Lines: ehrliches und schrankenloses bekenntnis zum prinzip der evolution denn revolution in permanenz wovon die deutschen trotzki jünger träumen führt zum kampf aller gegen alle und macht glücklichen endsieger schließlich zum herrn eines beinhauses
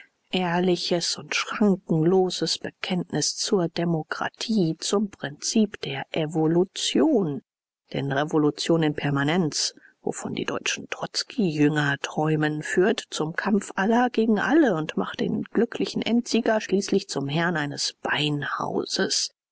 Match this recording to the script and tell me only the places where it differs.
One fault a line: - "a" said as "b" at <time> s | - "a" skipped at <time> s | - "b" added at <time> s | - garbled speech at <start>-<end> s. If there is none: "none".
- "zur demokratie" added at 3.4 s
- "den" added at 15.2 s